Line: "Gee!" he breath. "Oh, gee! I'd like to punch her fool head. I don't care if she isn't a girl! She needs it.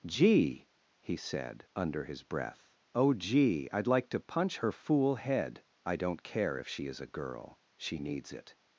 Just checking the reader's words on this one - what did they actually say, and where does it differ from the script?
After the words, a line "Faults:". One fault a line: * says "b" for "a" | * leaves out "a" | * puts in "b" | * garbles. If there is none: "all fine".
"Gee!" he said, under his breath. "Oh, gee! I'd like to punch her fool head. I don't care if she is a girl! She needs it.
Faults:
* puts in "said under his"
* says "is" for "isn't"